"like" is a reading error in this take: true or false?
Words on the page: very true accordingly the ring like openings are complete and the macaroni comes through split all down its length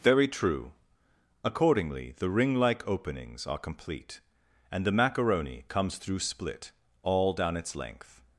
false